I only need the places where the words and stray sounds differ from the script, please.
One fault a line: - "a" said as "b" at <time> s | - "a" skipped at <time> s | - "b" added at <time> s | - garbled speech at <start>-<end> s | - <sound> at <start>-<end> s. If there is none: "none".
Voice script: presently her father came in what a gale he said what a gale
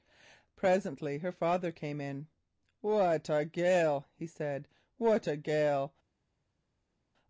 none